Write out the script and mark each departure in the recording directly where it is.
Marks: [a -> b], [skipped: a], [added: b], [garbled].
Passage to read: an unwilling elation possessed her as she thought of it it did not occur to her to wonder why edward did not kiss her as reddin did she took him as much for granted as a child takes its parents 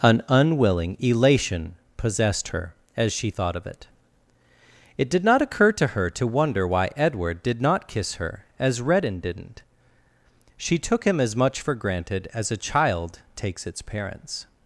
an unwilling elation possessed her as she thought of it it did not occur to her to wonder why edward did not kiss her as reddin [did -> didn't] she took him as much for granted as a child takes its parents